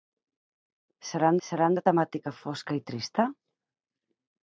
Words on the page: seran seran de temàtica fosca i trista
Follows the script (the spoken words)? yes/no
yes